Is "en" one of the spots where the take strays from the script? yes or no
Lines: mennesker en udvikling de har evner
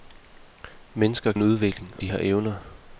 no